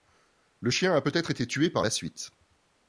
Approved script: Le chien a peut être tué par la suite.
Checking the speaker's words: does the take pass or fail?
fail